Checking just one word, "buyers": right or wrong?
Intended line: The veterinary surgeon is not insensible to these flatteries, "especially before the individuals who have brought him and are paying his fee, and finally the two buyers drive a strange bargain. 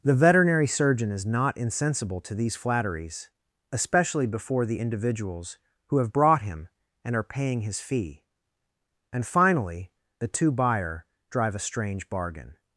wrong